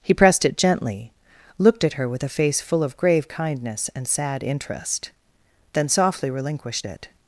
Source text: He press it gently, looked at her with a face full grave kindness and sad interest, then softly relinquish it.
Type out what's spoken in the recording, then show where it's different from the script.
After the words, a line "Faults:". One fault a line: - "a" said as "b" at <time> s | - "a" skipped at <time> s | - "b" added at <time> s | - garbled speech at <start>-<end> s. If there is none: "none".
He pressed it gently, looked at her with a face full of grave kindness and sad interest, then softly relinquished it.
Faults:
- "press" said as "pressed" at 0.1 s
- "of" added at 2.8 s
- "relinquish" said as "relinquished" at 6.3 s